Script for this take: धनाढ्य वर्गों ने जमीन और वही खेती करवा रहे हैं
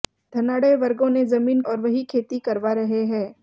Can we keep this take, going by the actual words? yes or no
yes